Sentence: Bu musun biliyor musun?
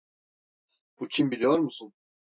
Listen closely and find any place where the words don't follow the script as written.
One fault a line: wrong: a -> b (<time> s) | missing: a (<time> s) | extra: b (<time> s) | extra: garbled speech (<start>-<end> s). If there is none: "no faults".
wrong: musun -> kim (1.1 s)